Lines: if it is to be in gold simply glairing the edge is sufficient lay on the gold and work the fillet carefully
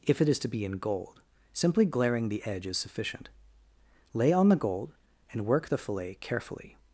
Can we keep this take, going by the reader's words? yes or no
yes